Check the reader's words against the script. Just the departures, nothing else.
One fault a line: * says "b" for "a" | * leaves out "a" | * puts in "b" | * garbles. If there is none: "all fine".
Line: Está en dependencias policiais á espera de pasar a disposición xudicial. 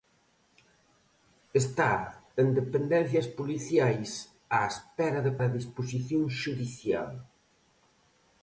* leaves out "pasar"